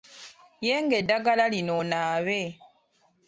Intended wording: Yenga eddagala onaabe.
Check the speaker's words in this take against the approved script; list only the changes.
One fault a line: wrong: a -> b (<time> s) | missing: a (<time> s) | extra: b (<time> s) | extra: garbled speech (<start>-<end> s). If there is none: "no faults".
extra: lino (1.5 s)